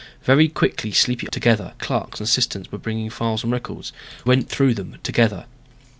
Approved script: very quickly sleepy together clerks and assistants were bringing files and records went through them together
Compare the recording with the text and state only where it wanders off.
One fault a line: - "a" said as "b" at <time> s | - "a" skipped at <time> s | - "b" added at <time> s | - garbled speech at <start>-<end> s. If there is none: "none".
none